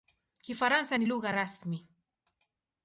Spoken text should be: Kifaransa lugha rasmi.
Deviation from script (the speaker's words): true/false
true